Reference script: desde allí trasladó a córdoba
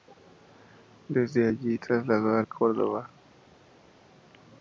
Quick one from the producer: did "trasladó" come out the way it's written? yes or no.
yes